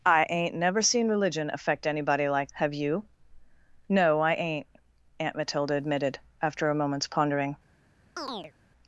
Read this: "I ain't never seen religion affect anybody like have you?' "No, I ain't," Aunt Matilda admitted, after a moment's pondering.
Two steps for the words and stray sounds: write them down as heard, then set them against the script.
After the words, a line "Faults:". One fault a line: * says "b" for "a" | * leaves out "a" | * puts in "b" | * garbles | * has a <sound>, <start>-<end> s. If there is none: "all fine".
"I ain't never seen religion affect anybody like have you?' "No, I ain't," Aunt Matilda admitted, after a moment's pondering.
Faults:
* has a chirp, 8.2-8.5 s